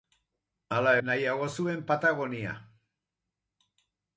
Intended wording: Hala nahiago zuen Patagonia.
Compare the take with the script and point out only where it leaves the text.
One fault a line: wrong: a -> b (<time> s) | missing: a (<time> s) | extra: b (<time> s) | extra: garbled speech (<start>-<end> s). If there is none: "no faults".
no faults